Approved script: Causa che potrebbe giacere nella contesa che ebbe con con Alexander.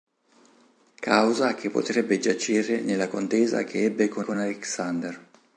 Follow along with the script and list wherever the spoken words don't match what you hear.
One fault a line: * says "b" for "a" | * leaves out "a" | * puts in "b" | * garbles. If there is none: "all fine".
all fine